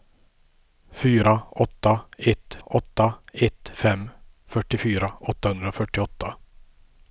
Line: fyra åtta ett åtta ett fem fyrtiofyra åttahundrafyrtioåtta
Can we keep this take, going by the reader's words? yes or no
yes